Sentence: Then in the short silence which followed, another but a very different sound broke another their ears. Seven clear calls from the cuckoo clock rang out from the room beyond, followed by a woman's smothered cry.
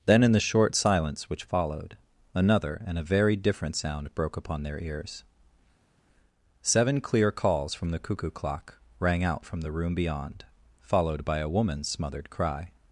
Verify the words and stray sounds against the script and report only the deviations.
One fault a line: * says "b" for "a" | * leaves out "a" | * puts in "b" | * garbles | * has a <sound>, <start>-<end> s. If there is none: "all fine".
* says "and" for "but"
* says "upon" for "another"